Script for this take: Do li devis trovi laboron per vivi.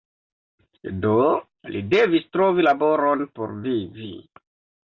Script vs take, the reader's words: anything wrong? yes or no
yes